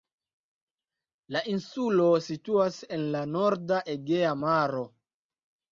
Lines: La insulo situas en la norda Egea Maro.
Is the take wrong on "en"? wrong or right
right